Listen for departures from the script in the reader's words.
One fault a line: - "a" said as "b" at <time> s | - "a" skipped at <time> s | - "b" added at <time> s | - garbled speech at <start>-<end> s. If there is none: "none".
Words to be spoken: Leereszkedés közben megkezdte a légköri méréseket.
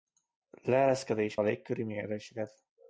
- "közben megkezdte" skipped at 1.4 s